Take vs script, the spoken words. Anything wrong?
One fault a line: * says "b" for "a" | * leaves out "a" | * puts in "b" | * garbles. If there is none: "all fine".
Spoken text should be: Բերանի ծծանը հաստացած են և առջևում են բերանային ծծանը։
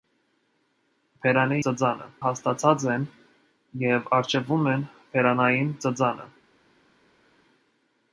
all fine